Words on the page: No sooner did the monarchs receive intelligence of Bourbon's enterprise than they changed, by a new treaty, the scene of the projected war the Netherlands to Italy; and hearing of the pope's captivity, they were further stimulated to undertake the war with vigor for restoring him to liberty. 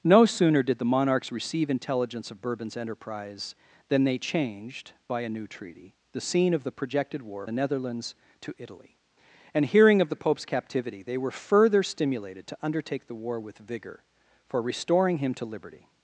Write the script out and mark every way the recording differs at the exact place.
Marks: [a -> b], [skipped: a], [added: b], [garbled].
No sooner did the monarchs receive intelligence of Bourbon's enterprise than they changed, by a new treaty, the scene of the projected war the Netherlands to Italy; and hearing of the pope's captivity, they were further stimulated to undertake the war with vigor for restoring him to liberty.